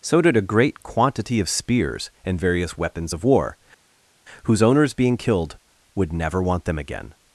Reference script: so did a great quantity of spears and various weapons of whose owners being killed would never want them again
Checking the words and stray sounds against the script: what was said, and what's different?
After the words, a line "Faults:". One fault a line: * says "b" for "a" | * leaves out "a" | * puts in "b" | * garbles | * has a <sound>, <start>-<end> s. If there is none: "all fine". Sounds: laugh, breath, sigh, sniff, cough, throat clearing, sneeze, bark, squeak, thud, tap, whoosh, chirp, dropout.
so did a great quantity of spears and various weapons of war whose owners being killed would never want them again
Faults:
* puts in "war"